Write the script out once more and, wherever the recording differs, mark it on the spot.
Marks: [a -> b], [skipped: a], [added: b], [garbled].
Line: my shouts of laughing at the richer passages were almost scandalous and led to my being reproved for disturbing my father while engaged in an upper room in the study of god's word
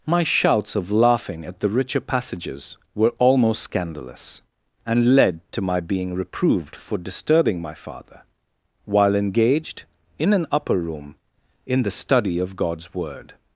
my shouts of laughing at the richer passages were almost scandalous and led to my being reproved for disturbing my father while engaged in an upper room in the study of god's word